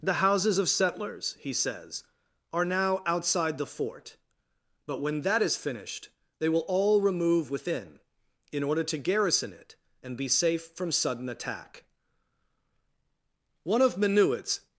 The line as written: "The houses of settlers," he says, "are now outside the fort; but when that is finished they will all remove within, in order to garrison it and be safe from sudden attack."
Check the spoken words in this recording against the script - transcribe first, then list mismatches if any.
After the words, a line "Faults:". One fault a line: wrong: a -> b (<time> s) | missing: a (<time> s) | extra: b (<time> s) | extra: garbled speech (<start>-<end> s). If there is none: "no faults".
"The houses of settlers," he says, "are now outside the fort; but when that is finished they will all remove within, in order to garrison it and be safe from sudden attack." One of Minuit's
Faults:
extra: One of Minuit's (13.6 s)